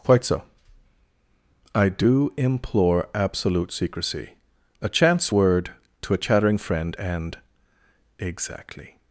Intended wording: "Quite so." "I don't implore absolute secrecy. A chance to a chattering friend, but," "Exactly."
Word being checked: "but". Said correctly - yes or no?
no